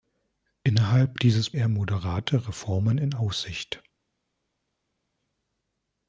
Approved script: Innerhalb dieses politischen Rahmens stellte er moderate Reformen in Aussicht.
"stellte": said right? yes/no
no